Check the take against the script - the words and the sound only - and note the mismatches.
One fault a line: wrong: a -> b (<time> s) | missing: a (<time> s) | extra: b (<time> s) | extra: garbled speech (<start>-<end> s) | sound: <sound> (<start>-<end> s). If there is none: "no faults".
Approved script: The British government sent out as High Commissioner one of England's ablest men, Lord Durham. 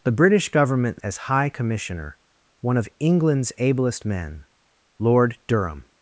missing: sent out (1.0 s)